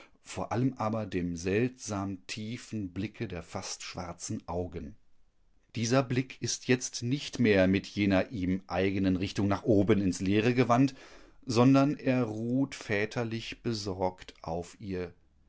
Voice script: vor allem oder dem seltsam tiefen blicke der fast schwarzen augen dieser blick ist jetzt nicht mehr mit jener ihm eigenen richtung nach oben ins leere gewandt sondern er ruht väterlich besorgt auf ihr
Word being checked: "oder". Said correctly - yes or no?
no